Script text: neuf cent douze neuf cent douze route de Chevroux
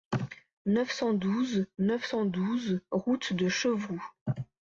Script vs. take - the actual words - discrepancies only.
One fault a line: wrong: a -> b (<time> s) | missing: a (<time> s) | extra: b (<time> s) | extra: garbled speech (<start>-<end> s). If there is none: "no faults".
no faults